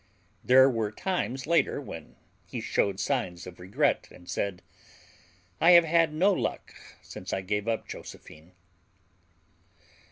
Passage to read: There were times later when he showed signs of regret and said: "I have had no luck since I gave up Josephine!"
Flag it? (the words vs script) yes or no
no